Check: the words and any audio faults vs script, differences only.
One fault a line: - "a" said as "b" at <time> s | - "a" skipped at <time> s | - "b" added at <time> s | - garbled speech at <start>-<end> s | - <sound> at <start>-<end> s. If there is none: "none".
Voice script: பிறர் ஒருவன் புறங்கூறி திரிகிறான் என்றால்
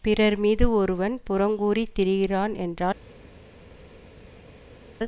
- "மீது" added at 0.4 s